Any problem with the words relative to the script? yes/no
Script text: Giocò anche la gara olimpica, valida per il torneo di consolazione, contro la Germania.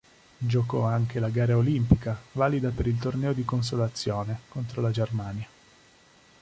no